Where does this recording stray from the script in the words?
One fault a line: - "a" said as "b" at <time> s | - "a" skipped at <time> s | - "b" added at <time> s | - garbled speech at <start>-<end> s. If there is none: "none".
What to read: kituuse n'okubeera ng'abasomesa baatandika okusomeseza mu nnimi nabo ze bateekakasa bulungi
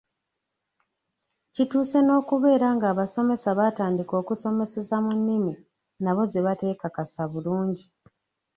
none